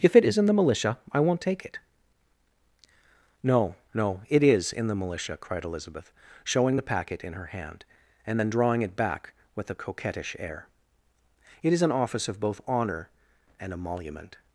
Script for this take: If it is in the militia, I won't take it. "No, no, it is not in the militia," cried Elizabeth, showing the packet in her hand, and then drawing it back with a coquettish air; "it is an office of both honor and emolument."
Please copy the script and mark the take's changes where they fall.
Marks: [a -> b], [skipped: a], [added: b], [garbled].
If it is in the militia, I won't take it. "No, no, it is [skipped: not] in the militia," cried Elizabeth, showing the packet in her hand, and then drawing it back with a coquettish air; "it is an office of both honor and emolument."